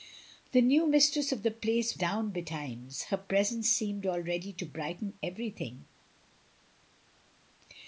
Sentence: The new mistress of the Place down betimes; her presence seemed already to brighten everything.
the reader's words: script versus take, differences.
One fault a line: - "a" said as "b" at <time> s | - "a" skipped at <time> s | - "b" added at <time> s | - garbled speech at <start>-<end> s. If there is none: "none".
none